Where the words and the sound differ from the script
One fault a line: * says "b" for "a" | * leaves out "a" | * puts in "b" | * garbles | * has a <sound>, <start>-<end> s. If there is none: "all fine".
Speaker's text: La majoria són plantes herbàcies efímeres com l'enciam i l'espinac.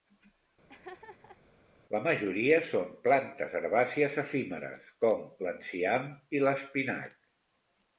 * has a laugh, 0.7-1.4 s